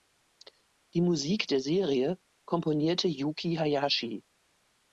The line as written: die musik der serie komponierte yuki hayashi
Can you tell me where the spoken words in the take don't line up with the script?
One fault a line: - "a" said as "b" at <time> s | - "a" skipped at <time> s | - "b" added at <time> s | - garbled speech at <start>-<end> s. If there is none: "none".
none